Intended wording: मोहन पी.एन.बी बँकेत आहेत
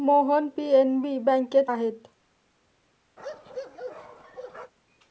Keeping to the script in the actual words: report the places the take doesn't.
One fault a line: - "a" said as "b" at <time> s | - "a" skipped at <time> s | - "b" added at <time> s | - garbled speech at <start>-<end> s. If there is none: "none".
none